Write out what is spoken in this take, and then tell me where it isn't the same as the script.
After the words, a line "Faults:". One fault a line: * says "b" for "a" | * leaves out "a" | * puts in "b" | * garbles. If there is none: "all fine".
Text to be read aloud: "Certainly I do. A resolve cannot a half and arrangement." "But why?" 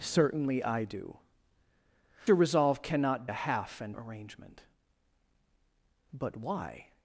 "Certainly I do. A resolve cannot a half and arrangement." "But why?"
Faults:
all fine